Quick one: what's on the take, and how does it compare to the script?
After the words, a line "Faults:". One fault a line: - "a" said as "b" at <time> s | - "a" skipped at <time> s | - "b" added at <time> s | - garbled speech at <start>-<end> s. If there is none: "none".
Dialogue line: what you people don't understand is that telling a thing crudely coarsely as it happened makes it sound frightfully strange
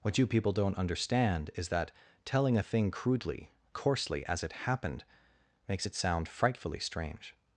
what you people don't understand is that telling a thing crudely coarsely as it happened makes it sound frightfully strange
Faults:
none